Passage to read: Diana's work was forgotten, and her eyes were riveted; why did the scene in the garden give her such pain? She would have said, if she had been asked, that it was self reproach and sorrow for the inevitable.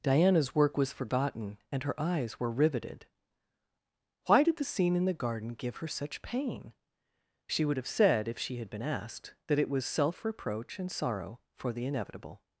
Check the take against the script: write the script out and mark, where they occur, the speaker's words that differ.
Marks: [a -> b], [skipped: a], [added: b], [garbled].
Diana's work was forgotten, and her eyes were riveted; why did the scene in the garden give her such pain? She would have said, if she had been asked, that it was self reproach and sorrow for the inevitable.